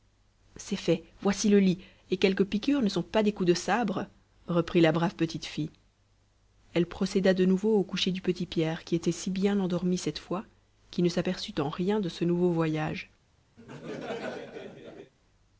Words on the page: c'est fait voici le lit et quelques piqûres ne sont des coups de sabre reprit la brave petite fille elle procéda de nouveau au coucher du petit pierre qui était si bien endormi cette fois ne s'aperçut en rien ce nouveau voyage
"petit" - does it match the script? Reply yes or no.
yes